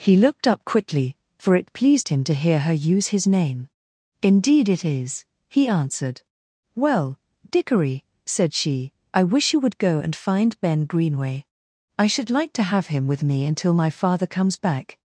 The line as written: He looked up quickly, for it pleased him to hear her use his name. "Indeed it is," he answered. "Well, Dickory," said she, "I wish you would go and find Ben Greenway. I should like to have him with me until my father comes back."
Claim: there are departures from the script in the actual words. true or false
false